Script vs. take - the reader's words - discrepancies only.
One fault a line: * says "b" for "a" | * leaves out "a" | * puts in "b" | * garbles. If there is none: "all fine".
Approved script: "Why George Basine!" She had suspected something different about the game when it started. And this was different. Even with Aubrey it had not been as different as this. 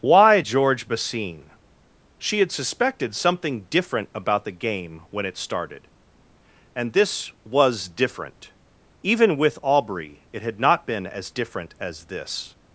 all fine